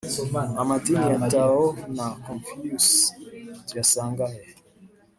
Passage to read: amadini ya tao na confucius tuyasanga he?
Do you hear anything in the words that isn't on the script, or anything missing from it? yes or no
no